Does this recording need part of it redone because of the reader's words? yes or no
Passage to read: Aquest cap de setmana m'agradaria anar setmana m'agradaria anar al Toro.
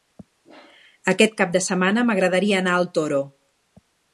yes